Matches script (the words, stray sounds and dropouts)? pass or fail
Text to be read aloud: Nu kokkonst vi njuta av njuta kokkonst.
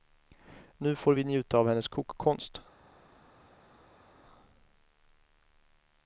fail